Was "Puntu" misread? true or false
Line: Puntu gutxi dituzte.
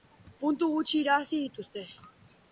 false